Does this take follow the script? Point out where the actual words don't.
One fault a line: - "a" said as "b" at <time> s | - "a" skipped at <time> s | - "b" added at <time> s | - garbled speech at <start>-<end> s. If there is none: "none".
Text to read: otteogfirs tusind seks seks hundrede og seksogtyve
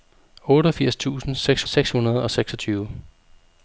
none